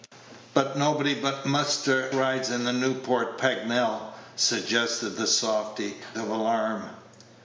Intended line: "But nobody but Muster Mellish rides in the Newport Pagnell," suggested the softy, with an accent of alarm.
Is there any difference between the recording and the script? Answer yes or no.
yes